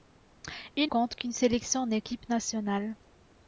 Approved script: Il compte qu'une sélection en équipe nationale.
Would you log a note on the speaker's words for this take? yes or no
no